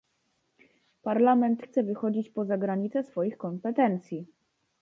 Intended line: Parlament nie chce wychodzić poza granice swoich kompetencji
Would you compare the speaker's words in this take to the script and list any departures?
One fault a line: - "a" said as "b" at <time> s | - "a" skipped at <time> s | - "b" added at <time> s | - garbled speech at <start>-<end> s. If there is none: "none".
- "nie" skipped at 1.6 s